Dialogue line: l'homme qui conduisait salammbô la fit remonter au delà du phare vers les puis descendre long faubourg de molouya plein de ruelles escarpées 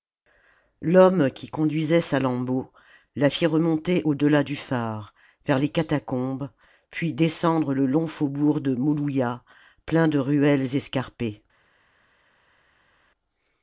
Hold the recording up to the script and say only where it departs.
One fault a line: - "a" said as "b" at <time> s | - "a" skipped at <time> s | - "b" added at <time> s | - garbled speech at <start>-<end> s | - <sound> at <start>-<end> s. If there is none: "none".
- "catacombes" added at 5.7 s
- "le" added at 7.7 s